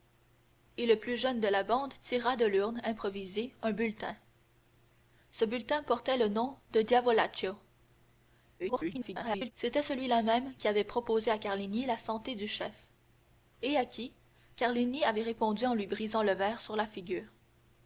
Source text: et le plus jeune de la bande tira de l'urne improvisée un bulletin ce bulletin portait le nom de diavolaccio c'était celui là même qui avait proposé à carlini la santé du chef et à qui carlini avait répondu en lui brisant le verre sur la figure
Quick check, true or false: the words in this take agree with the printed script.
false